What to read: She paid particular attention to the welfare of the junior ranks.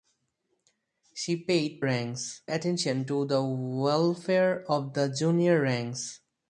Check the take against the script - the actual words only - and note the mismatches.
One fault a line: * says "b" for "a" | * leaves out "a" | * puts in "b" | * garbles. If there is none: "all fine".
* says "ranks" for "particular"